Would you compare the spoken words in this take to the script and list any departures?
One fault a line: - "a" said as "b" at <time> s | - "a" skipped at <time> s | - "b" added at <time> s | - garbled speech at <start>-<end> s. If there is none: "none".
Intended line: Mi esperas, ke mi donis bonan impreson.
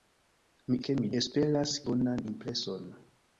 - "esperas" skipped at 0.8 s
- "donis" said as "esperas" at 1.2 s